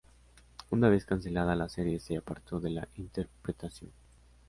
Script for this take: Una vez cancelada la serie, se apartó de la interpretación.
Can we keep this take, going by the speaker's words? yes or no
yes